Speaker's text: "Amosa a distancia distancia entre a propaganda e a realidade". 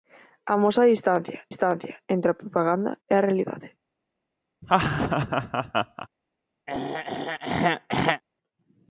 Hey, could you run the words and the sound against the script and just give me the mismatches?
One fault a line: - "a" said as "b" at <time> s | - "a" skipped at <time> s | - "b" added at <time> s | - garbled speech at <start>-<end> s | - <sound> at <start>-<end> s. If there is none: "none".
- laugh at 4.6-6.1 s
- throat clearing at 6.7-8.2 s